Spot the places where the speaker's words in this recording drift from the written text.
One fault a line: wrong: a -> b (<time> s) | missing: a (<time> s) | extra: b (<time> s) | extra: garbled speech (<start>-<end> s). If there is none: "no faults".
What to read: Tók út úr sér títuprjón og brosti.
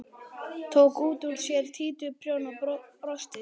no faults